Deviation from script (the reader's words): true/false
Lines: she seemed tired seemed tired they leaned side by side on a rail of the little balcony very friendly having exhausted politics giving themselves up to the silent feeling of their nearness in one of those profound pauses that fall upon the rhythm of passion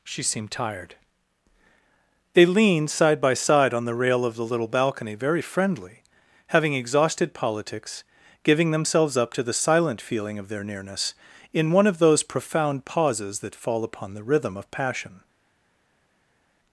true